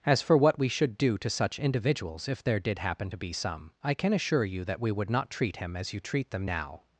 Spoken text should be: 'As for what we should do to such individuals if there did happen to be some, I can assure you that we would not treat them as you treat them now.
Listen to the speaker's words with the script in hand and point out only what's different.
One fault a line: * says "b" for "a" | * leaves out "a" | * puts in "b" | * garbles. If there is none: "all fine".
* says "him" for "them"